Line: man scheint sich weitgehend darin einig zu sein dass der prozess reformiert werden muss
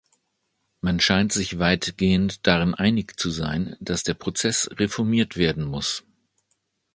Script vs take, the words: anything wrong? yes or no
no